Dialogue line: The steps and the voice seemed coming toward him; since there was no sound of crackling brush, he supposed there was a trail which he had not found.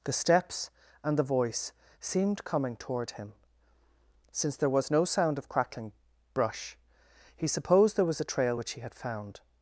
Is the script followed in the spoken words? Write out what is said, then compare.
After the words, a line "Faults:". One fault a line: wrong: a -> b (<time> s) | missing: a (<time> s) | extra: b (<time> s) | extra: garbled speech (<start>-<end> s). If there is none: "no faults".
The steps and the voice seemed coming toward him; since there was no sound of crackling brush, he supposed there was a trail which he had found.
Faults:
missing: not (8.9 s)